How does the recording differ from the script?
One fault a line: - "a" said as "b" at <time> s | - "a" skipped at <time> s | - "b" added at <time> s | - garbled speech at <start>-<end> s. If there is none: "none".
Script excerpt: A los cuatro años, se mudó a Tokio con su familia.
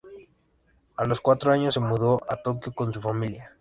none